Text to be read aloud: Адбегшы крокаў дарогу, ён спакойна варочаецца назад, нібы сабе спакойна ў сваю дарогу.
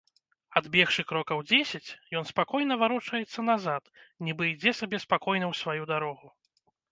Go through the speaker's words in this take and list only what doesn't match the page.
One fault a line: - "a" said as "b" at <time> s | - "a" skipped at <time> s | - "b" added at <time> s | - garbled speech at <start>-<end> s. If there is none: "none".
- "дарогу" said as "дзесяць" at 1.5 s
- "ідзе" added at 4.5 s